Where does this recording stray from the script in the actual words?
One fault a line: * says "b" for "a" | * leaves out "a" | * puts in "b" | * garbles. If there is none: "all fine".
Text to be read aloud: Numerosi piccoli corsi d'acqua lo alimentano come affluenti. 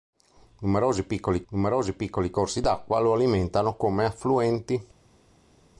* puts in "numerosi piccoli"